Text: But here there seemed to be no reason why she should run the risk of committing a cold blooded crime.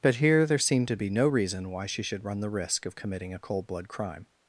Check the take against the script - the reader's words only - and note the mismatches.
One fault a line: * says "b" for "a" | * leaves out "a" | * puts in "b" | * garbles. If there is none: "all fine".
* says "blood" for "blooded"